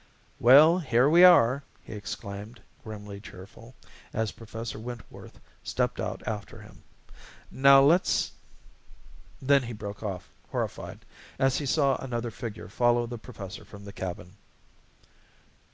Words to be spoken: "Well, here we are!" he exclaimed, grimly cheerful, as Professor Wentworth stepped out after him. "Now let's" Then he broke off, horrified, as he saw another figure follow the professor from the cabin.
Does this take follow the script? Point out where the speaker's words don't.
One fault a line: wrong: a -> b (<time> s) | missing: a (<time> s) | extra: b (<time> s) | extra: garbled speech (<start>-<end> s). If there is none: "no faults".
no faults